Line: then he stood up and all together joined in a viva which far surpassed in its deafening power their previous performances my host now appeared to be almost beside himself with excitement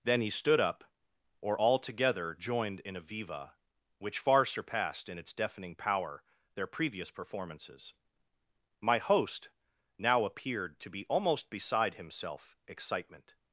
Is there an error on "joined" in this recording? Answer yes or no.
no